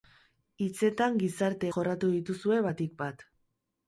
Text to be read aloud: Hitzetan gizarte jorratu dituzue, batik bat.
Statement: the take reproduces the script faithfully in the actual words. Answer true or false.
true